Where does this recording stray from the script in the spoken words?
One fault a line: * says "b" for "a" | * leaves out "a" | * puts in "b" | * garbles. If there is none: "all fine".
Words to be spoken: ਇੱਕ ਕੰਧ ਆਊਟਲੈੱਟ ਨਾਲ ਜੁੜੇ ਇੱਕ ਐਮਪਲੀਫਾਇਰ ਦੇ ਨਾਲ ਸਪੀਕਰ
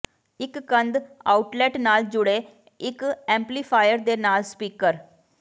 all fine